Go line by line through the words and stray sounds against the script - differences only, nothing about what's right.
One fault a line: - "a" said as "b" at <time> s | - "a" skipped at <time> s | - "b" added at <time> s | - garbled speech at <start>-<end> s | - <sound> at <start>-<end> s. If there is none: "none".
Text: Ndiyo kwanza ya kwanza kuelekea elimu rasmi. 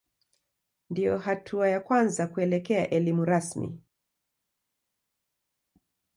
- "kwanza" said as "hatua" at 1.2 s